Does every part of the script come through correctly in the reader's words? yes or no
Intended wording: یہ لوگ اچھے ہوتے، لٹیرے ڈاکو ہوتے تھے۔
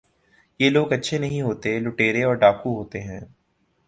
no